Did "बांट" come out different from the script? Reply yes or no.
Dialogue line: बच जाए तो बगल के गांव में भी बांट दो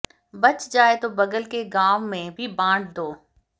no